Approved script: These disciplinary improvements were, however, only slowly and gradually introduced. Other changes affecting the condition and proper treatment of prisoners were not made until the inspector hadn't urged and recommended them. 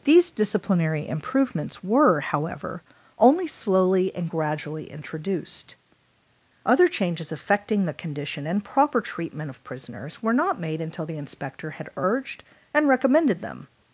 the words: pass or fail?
fail